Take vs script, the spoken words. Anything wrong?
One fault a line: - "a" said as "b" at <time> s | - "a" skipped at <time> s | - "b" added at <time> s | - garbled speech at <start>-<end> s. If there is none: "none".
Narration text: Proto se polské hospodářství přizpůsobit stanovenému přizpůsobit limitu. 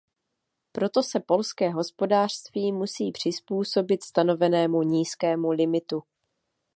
- "musí" added at 2.7 s
- "přizpůsobit" said as "nízkému" at 4.8 s